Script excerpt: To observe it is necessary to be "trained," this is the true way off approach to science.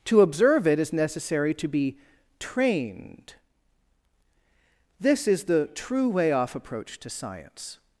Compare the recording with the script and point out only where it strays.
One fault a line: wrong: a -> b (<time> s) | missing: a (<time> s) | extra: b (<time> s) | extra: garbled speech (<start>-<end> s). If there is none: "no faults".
no faults